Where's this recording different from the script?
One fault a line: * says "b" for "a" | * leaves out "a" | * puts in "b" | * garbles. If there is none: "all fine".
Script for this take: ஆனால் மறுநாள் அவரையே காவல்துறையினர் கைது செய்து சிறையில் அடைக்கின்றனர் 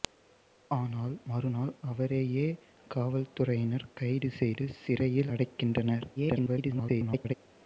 * garbles